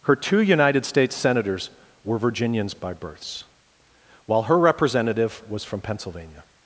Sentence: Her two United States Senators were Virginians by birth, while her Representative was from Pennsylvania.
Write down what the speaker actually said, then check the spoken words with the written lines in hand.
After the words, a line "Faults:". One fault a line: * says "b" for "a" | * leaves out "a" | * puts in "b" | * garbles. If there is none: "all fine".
Her two United States Senators were Virginians by births, while her Representative was from Pennsylvania.
Faults:
* says "births" for "birth"